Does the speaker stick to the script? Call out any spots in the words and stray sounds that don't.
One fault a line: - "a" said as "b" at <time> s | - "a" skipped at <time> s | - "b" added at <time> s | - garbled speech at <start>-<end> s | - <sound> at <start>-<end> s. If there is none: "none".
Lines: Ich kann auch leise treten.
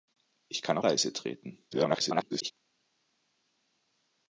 - "auch" skipped at 0.8 s
- garbled speech at 1.7-2.5 s